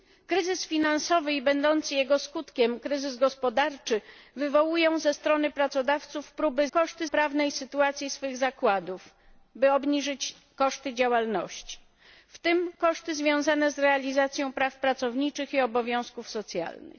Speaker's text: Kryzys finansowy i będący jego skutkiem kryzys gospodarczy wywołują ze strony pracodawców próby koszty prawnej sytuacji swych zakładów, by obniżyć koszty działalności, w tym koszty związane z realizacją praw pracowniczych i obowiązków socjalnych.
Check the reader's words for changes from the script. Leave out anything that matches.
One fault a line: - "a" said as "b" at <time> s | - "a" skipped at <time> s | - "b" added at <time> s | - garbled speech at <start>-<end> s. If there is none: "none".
none